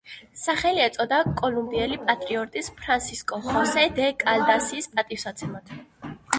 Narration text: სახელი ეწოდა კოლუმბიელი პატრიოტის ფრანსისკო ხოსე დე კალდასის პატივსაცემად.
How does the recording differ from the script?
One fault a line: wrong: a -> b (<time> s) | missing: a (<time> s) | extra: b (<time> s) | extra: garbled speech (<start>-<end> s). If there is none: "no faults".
no faults